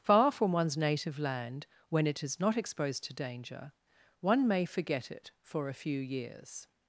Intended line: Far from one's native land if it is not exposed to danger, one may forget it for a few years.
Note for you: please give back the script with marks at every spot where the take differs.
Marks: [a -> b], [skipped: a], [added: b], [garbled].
Far from one's native land [if -> when] it is not exposed to danger, one may forget it for a few years.